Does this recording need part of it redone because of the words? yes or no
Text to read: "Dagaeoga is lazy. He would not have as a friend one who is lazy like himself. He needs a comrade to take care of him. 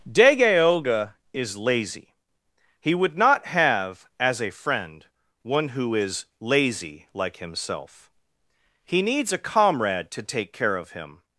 no